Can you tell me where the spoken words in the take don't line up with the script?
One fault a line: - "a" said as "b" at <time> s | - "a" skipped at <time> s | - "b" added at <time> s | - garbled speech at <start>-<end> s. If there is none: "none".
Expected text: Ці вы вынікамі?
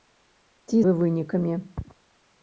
none